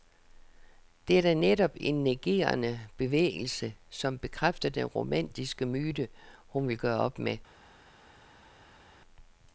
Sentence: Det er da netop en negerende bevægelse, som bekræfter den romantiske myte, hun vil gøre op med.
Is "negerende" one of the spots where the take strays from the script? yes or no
no